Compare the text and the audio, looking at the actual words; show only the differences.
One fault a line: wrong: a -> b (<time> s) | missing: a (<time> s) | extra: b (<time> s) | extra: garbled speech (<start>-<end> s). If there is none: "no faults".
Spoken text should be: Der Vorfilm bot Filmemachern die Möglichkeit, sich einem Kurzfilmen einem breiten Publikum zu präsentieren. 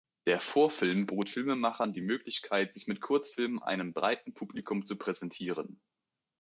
wrong: einem -> mit (2.9 s)